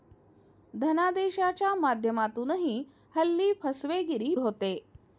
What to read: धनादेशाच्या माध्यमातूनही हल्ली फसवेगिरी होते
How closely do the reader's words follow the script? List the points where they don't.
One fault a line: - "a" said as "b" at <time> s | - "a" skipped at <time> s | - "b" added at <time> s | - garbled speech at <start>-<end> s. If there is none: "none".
none